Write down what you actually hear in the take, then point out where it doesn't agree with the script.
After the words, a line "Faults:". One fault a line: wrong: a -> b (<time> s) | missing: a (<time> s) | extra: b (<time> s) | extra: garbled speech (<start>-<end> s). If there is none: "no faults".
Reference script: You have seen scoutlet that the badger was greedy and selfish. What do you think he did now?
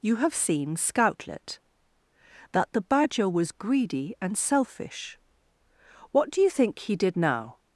You have seen scoutlet that the badger was greedy and selfish. What do you think he did now?
Faults:
no faults